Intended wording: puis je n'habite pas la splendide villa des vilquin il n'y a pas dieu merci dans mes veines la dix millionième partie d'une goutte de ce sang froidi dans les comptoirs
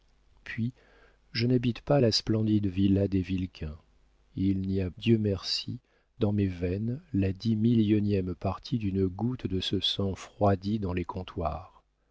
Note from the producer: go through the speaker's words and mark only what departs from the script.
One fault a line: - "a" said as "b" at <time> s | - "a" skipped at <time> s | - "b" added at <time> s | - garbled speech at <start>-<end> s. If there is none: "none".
- "pas" skipped at 4.9 s